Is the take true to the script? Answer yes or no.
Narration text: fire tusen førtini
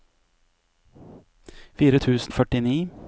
yes